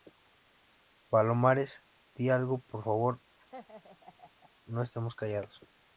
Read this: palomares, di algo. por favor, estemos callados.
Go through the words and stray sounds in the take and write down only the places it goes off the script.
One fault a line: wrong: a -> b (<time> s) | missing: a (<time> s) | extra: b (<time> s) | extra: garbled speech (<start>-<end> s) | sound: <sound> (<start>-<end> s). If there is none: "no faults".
sound: laugh (3.4-4.5 s)
extra: no (4.6 s)